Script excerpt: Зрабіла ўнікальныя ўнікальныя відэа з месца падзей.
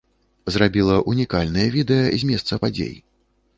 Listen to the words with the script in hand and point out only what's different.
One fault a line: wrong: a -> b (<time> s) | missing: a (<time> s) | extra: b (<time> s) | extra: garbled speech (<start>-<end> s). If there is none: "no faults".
missing: ўнікальныя (1.7 s)